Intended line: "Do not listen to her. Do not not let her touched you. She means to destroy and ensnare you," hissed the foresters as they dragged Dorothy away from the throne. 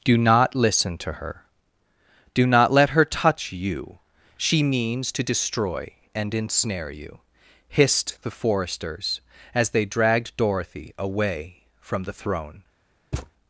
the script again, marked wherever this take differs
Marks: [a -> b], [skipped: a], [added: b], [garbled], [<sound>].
"Do not listen to her. Do not [skipped: not] let her [touched -> touch] you. She means to destroy and ensnare you," hissed the foresters as they dragged Dorothy away from the throne. [thud]